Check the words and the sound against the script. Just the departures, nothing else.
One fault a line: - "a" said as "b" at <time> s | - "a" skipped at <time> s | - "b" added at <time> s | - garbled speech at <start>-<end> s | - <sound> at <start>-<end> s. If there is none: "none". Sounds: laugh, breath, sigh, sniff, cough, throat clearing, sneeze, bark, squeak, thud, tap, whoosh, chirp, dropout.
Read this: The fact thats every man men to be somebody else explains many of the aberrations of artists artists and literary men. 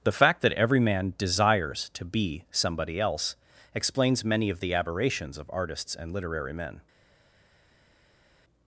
- "thats" said as "that" at 0.4 s
- "men" said as "desires" at 1.2 s
- "artists" skipped at 6.0 s